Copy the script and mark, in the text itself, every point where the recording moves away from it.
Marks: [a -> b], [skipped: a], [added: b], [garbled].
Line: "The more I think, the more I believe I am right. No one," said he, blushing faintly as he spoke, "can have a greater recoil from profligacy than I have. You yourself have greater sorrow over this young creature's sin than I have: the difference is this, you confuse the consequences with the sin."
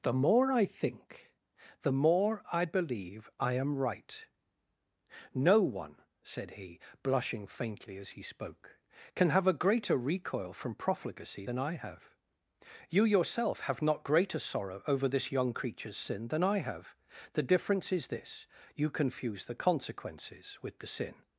"The more I think, the more I believe I am right. No one," said he, blushing faintly as he spoke, "can have a greater recoil from profligacy than I have. You yourself have [added: not] greater sorrow over this young creature's sin than I have: the difference is this, you confuse the consequences with the sin."